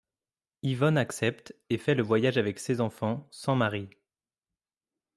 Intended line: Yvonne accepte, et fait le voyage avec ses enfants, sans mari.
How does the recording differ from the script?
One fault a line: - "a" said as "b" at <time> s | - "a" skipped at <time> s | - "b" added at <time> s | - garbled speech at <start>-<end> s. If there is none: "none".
none